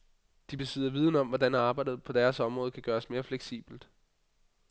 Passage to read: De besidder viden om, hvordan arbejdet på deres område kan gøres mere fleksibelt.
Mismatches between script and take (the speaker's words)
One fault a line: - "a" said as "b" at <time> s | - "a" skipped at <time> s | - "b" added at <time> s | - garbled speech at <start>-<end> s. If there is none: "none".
none